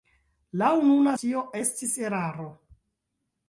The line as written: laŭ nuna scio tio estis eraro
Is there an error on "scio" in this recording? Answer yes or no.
yes